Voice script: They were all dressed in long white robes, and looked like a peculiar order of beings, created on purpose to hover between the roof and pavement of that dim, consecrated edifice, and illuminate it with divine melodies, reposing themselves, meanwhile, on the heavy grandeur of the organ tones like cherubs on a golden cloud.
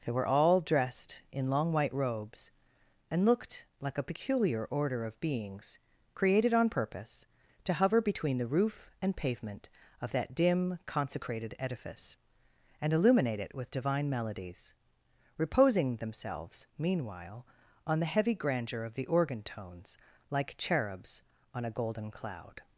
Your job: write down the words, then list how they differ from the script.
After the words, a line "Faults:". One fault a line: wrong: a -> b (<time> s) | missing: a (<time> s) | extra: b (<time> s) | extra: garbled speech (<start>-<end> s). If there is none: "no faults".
They were all dressed in long white robes, and looked like a peculiar order of beings, created on purpose to hover between the roof and pavement of that dim, consecrated edifice, and illuminate it with divine melodies, reposing themselves, meanwhile, on the heavy grandeur of the organ tones like cherubs on a golden cloud.
Faults:
no faults